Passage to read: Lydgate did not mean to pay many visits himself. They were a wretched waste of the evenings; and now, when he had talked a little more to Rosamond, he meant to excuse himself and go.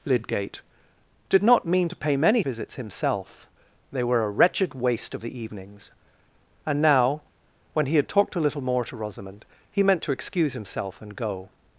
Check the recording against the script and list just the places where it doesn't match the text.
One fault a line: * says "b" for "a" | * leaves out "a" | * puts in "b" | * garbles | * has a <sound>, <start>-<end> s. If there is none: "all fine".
all fine